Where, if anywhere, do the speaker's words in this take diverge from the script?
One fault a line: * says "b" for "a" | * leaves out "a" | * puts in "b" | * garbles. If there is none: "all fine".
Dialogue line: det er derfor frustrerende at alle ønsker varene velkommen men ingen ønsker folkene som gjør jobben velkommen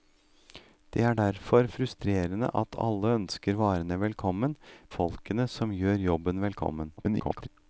* leaves out "men ingen ønsker"
* garbles